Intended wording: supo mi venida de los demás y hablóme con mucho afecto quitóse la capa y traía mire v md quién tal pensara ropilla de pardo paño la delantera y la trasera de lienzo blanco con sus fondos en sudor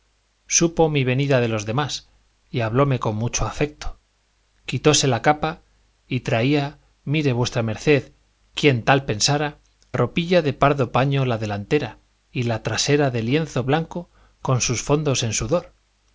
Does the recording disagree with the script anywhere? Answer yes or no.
no